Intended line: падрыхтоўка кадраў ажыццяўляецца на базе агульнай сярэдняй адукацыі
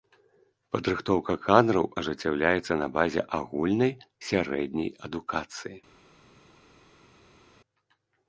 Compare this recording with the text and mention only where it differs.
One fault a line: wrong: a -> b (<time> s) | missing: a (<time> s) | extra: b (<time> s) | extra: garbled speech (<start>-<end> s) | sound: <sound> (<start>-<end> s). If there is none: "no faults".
no faults